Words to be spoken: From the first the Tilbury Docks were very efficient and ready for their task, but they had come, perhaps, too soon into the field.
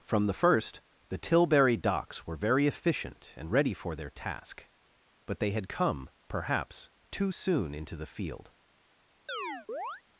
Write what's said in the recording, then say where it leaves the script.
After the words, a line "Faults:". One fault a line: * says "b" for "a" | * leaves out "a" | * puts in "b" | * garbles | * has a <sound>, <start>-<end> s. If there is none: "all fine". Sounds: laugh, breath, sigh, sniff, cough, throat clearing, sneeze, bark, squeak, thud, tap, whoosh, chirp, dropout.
From the first the Tilbury Docks were very efficient and ready for their task, but they had come, perhaps, too soon into the field.
Faults:
* has a chirp, 9.3-10.0 s